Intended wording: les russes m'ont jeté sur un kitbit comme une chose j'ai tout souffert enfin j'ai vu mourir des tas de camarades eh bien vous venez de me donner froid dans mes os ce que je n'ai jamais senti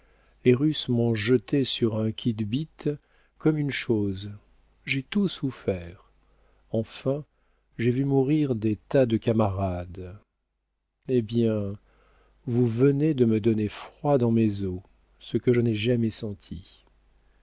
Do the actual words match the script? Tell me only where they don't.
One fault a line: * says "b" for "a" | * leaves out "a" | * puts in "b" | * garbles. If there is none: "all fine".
all fine